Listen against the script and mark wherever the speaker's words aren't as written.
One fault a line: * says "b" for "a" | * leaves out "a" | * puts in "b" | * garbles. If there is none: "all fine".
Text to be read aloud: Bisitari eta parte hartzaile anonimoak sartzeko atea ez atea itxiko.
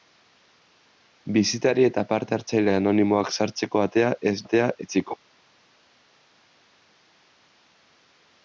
all fine